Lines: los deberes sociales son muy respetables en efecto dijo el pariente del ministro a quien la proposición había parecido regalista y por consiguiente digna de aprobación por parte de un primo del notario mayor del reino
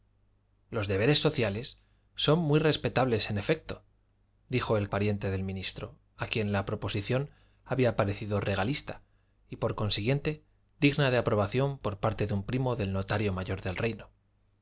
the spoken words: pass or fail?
pass